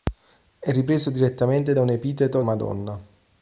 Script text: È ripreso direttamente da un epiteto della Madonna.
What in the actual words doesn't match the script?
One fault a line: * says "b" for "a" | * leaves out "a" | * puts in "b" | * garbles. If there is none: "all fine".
* leaves out "della"